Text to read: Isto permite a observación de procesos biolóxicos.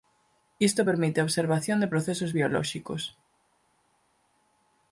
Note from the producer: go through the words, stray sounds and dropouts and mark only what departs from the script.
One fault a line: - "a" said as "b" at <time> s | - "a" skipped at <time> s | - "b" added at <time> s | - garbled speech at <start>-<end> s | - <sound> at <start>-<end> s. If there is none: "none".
none